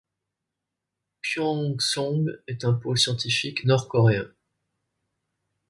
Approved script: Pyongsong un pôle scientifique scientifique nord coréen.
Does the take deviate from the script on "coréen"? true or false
false